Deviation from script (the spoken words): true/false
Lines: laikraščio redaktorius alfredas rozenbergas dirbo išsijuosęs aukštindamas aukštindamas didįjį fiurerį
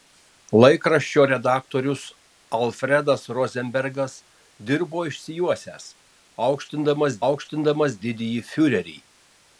false